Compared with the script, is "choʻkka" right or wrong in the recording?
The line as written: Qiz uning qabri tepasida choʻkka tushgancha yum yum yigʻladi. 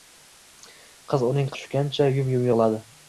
wrong